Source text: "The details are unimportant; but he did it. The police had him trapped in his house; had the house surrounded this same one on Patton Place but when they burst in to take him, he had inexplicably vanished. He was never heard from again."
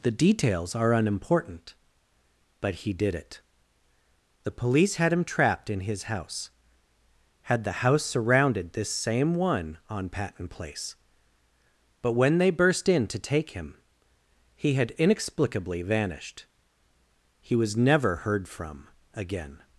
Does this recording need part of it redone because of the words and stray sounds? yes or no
no